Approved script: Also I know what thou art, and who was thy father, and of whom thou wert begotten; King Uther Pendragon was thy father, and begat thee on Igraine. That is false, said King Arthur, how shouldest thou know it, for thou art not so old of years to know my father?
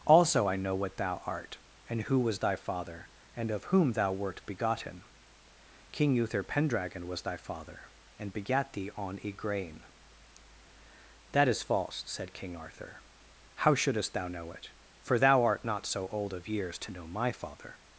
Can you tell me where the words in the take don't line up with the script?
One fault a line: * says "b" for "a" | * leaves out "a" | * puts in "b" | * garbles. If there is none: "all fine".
all fine